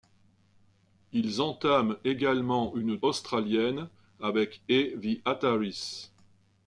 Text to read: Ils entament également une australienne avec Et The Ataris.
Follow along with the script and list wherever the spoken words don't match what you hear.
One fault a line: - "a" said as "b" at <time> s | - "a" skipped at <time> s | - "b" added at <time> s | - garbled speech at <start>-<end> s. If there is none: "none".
none